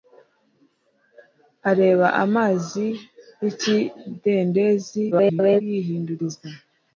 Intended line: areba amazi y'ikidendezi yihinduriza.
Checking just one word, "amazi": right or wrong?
right